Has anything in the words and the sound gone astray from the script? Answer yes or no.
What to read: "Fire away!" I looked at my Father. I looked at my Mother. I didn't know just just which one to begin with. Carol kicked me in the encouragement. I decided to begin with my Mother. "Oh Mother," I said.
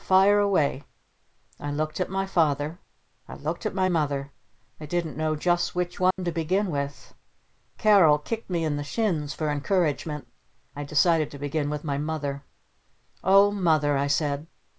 yes